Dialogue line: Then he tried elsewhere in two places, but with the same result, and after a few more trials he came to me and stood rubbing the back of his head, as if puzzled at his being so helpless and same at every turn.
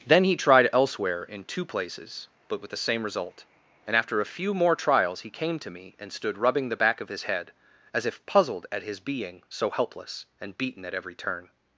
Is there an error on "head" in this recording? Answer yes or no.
no